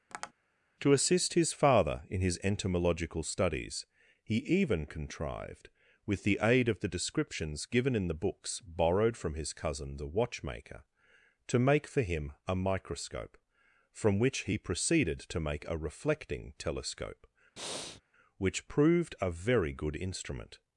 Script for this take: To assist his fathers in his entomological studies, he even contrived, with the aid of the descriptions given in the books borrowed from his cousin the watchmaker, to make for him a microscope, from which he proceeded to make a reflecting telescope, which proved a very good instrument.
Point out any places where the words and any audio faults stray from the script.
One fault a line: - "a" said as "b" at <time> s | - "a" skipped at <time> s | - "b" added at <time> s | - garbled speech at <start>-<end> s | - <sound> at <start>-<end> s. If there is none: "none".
- tap at 0.1-0.3 s
- "fathers" said as "father" at 1.5 s
- breath at 17.6-18.0 s